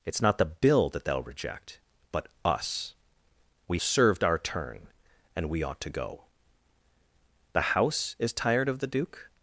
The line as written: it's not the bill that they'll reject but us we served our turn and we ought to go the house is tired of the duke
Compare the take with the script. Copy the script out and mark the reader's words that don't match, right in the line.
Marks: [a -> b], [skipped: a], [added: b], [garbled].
it's not the bill that they'll reject but us we served our turn and we ought to go the house is tired of the duke